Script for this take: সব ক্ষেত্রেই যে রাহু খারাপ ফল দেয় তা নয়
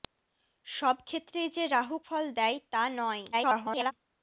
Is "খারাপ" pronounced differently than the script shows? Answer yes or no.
yes